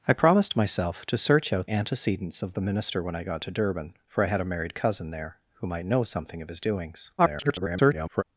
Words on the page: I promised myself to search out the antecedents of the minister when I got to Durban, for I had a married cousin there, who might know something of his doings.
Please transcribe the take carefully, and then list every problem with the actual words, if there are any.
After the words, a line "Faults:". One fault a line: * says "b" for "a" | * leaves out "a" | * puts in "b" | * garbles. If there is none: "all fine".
I promised myself to search out antecedents of the minister when I got to Durban, for I had a married cousin there, who might know something of his doings. [garbled]
Faults:
* leaves out "the"
* garbles